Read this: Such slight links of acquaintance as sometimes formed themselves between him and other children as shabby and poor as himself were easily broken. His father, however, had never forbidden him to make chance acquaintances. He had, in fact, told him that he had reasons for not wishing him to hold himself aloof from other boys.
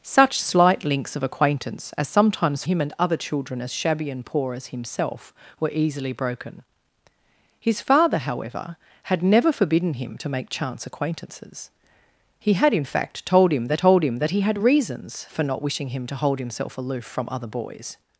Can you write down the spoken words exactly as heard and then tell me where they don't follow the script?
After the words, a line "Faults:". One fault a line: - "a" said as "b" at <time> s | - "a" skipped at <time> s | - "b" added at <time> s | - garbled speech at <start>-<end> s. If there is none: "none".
Such slight links of acquaintance as sometimes him and other children as shabby and poor as himself were easily broken. His father, however, had never forbidden him to make chance acquaintances. He had, in fact, told him that told him that he had reasons for not wishing him to hold himself aloof from other boys.
Faults:
- "formed themselves between" skipped at 2.6 s
- "told him that" added at 13.8 s